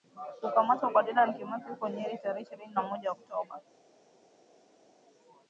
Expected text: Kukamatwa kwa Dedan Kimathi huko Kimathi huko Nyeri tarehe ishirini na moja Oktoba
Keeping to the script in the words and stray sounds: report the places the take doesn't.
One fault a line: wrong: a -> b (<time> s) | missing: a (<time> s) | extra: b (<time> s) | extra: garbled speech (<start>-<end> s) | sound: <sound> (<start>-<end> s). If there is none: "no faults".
missing: Kimathi huko (1.9 s)